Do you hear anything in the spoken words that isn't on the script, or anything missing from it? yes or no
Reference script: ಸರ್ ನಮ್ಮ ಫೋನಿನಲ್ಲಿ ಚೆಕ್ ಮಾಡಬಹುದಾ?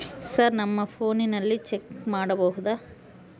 no